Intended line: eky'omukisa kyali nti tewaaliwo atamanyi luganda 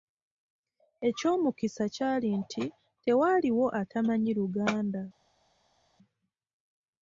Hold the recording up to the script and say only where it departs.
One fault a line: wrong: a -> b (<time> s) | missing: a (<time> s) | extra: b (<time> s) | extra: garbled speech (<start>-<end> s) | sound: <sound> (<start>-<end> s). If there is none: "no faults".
no faults